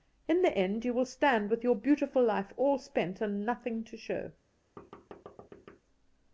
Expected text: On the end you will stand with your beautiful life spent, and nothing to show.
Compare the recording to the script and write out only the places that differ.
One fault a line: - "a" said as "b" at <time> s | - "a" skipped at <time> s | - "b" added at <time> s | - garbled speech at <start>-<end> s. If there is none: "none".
- "On" said as "In" at 0.3 s
- "all" added at 2.6 s